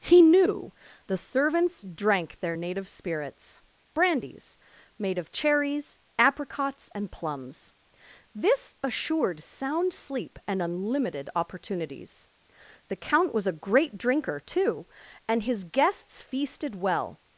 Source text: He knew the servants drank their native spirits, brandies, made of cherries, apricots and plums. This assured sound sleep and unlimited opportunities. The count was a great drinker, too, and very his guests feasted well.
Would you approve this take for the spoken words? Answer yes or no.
no